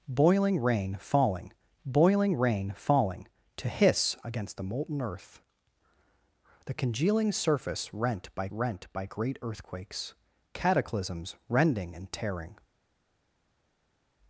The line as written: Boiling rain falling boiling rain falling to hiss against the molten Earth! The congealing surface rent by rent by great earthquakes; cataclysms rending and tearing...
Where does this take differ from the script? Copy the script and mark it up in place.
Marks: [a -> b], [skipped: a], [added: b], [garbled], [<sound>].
Boiling rain falling boiling rain falling to hiss against the molten Earth! The congealing surface rent by rent by great earthquakes; cataclysms rending and tearing...